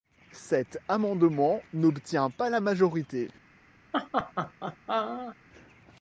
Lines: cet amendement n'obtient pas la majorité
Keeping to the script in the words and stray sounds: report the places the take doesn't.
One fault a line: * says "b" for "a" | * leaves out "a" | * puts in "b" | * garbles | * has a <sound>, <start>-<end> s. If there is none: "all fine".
* has a laugh, 3.9-5.4 s